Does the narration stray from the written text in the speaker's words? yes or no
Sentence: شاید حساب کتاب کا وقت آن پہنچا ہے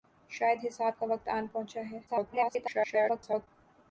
yes